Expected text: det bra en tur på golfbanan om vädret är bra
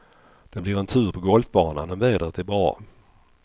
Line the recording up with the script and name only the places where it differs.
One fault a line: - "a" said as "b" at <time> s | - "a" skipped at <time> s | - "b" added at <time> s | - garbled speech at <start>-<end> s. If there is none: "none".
- "bra" said as "blir" at 0.6 s